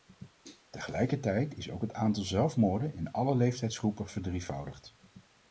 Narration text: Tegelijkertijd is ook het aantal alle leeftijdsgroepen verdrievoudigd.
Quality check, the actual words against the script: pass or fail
fail